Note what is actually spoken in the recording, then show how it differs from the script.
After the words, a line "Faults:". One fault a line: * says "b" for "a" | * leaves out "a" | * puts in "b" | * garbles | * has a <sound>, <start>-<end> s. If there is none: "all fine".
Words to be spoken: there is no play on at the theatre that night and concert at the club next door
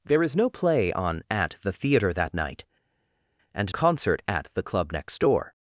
there is no play on at the theatre that night and concert at the club next door
Faults:
all fine